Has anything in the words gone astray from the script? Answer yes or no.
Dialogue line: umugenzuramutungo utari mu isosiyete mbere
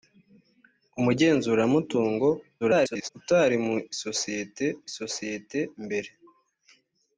yes